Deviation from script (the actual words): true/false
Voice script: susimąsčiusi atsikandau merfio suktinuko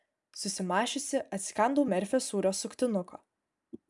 true